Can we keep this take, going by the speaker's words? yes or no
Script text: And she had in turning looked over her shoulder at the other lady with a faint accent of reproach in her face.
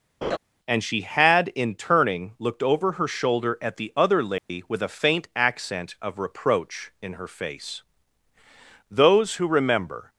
no